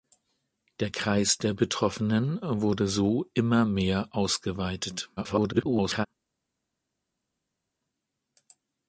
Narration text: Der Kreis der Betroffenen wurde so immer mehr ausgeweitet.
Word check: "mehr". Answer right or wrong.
right